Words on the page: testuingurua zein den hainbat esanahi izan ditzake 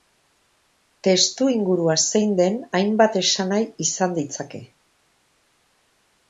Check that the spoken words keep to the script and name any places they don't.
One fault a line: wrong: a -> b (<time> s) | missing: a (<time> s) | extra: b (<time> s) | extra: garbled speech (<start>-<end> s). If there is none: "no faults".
no faults